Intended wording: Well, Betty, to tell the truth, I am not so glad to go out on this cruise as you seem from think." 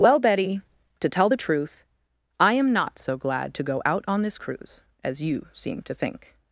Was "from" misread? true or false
true